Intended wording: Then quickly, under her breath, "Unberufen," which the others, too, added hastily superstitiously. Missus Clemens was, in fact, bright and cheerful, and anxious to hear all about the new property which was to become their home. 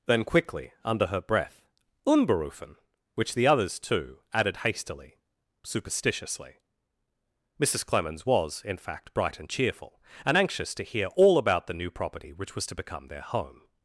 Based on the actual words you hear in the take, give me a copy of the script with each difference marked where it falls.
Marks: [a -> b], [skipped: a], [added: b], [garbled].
Then quickly, under her breath, "Unberufen," which the others, too, added hastily superstitiously. Missus Clemens was, in fact, bright and cheerful, and anxious to hear all about the new property which was to become their home.